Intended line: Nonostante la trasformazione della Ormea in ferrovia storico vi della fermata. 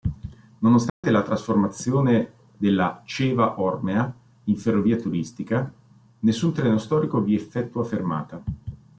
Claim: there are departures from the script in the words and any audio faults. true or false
true